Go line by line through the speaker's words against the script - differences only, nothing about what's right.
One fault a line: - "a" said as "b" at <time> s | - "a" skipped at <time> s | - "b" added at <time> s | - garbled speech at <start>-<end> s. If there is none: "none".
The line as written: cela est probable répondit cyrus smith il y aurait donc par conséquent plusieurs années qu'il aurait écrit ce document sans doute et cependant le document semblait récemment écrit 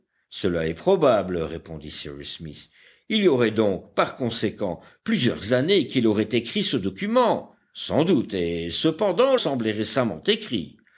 - "le document" skipped at 9.3 s